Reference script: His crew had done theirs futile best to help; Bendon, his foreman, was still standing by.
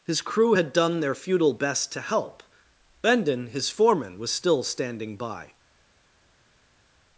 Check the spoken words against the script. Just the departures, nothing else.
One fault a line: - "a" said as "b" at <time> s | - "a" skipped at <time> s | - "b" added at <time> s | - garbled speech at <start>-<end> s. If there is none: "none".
- "theirs" said as "their" at 1.0 s